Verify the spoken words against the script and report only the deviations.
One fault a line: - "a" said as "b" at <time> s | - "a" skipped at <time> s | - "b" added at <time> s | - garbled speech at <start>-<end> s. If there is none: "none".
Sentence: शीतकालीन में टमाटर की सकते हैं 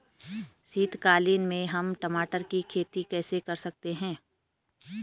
- "हम" added at 1.6 s
- "खेती कैसे कर" added at 2.6 s